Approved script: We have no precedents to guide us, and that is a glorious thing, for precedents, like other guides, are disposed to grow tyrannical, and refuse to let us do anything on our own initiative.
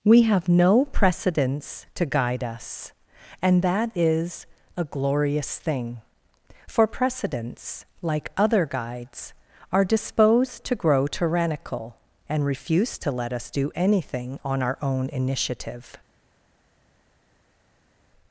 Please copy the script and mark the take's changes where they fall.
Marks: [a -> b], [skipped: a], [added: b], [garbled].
We have no precedents to guide us, and that is a glorious thing, for precedents, like other guides, are disposed to grow tyrannical, and refuse to let us do anything on our own initiative.